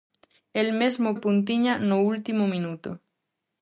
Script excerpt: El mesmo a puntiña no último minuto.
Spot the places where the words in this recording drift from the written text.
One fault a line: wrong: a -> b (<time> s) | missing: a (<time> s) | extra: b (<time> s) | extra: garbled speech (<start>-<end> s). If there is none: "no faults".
no faults